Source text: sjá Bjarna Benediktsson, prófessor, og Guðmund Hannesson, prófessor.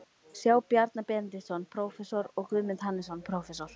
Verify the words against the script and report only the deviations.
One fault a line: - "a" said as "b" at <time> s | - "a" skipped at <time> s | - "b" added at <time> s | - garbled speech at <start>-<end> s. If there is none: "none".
none